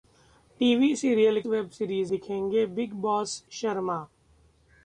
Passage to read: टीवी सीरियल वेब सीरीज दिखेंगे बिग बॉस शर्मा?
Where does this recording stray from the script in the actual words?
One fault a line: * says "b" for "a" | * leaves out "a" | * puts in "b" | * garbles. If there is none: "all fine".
all fine